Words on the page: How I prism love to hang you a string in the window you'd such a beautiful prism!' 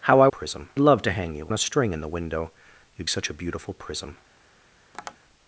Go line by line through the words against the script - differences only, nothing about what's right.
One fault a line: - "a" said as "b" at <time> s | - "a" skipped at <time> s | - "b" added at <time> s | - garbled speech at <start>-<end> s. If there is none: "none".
none